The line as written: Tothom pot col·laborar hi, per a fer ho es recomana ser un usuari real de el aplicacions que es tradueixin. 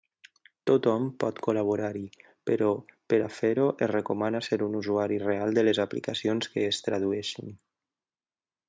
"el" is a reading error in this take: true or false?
true